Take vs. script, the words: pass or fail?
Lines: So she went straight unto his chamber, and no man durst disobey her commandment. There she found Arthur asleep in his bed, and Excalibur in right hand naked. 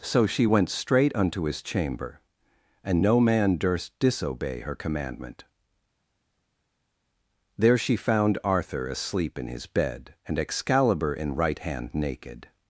pass